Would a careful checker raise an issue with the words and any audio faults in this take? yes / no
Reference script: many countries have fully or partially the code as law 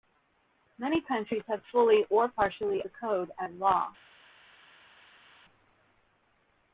no